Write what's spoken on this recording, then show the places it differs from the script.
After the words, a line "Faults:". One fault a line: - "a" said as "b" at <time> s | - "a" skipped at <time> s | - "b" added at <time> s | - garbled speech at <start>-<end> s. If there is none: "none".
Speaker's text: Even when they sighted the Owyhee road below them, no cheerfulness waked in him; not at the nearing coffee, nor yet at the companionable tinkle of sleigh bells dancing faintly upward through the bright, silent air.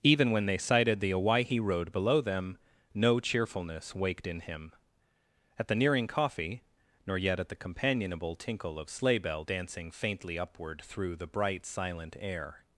Even when they sighted the Owyhee road below them, no cheerfulness waked in him; at the nearing coffee, nor yet at the companionable tinkle of sleigh bell dancing faintly upward through the bright, silent air.
Faults:
- "not" skipped at 4.7 s
- "bells" said as "bell" at 9.2 s